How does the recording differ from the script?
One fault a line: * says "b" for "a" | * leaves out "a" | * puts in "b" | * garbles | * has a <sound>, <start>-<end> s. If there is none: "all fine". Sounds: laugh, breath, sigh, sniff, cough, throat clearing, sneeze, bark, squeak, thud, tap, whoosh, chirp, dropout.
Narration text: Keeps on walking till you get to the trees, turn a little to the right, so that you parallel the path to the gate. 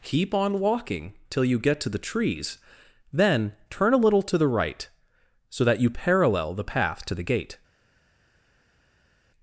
* says "Keep" for "Keeps"
* puts in "then"